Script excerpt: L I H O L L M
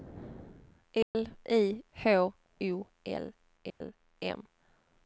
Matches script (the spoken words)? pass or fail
pass